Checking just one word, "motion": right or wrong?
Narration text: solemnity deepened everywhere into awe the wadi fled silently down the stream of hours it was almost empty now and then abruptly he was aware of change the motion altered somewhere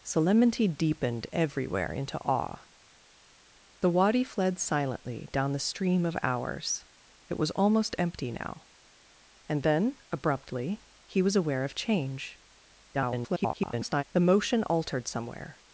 right